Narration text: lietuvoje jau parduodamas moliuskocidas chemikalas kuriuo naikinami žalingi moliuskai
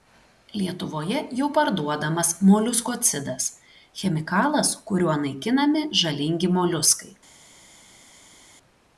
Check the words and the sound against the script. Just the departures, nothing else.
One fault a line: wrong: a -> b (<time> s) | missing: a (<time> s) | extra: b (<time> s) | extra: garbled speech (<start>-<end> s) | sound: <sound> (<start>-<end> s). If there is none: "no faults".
no faults